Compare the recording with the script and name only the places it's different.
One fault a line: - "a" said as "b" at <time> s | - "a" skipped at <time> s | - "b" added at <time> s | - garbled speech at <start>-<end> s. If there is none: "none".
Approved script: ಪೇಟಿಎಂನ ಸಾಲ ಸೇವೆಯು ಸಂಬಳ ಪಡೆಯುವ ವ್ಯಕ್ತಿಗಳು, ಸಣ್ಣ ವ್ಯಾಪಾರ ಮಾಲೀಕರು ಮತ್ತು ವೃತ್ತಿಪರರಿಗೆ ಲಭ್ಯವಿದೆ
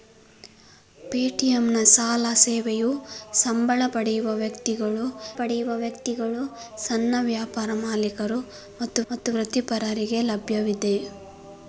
- "ಪಡೆಯುವ ವ್ಯಕ್ತಿಗಳು" added at 5.4 s
- "ಮತ್ತು" added at 9.1 s